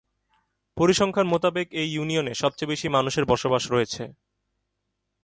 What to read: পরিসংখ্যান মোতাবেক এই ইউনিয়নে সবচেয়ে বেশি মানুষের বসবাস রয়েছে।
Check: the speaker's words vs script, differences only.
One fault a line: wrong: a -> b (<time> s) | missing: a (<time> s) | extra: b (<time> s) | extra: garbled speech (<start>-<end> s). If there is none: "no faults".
no faults